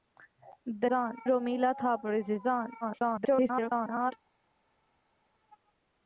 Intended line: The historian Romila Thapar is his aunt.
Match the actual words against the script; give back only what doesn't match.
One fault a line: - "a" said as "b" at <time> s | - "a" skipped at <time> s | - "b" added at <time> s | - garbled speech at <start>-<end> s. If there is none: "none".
- "historian" said as "aunt" at 0.9 s
- garbled speech at 2.8-4.1 s